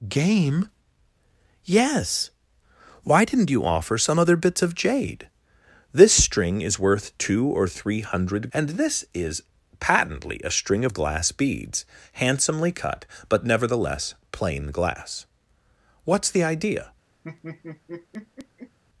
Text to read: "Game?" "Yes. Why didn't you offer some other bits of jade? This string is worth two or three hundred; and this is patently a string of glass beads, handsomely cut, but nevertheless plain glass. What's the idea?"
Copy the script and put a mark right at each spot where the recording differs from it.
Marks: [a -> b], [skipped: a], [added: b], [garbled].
"Game?" "Yes. Why didn't you offer some other bits of jade? This string is worth two or three hundred; and this is patently a string of glass beads, handsomely cut, but nevertheless plain glass. What's the idea?"